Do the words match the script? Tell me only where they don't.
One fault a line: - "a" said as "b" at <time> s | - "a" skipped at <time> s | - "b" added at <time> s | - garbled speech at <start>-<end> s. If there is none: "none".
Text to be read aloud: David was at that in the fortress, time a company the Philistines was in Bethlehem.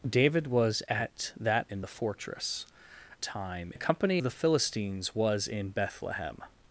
none